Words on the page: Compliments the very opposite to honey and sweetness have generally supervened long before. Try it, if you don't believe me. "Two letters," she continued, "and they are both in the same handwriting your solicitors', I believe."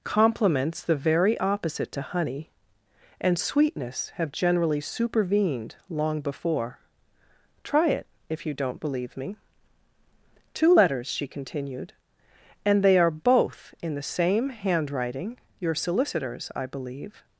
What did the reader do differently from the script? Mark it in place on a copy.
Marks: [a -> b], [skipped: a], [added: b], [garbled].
Compliments the very opposite to honey and sweetness have generally supervened long before. Try it, if you don't believe me. "Two letters," she continued, "and they are both in the same handwriting your solicitors', I believe."